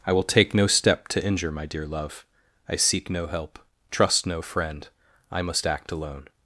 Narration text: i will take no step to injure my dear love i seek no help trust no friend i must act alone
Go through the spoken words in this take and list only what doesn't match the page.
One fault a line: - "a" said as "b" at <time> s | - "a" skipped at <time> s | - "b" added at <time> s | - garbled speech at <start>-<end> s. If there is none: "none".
none